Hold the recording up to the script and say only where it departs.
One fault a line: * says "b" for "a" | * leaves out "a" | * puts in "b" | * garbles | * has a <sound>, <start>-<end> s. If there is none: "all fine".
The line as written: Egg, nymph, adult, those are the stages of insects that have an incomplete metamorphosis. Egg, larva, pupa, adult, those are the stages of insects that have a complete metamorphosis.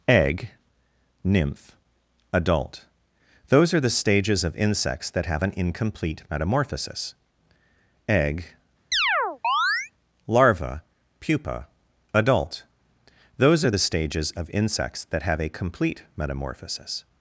* has a chirp, 8.9-9.9 s